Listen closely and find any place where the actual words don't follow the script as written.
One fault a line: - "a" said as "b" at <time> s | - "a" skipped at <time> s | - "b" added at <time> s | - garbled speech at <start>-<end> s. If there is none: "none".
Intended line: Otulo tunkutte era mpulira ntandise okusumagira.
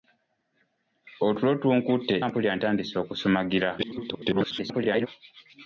- "era" skipped at 2.1 s
- garbled speech at 3.8-5.1 s